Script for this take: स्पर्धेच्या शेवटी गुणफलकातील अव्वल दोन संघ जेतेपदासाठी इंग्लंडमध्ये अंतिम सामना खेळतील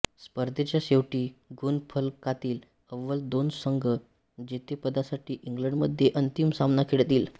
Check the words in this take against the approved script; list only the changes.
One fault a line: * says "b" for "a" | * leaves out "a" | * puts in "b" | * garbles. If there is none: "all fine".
all fine